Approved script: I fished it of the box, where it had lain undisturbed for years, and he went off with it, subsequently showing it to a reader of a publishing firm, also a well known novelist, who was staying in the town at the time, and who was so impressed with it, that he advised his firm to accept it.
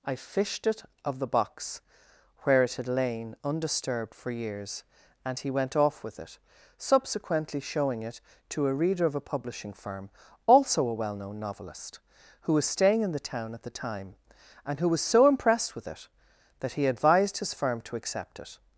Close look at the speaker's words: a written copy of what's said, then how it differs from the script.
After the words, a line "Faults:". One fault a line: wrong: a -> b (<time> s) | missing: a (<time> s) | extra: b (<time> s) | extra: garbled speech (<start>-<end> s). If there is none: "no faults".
I fished it of the box, where it had lain undisturbed for years, and he went off with it, subsequently showing it to a reader of a publishing firm, also a well known novelist, who was staying in the town at the time, and who was so impressed with it, that he advised his firm to accept it.
Faults:
no faults